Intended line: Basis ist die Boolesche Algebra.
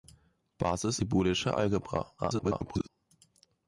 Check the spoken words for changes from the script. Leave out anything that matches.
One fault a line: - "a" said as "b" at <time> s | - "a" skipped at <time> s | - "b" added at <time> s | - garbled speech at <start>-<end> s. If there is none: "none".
- "ist" skipped at 1.0 s
- garbled speech at 2.2-2.9 s